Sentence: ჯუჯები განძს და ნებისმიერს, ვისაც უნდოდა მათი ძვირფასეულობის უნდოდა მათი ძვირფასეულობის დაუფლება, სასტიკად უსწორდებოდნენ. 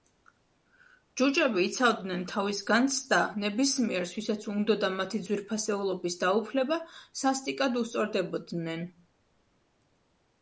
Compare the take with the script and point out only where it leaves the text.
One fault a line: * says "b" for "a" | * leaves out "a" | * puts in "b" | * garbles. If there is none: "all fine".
* puts in "იცავდნენ თავის"
* leaves out "უნდოდა მათი ძვირფასეულობის"